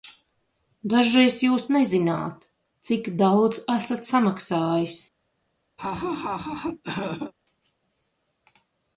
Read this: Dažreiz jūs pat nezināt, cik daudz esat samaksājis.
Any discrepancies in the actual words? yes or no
yes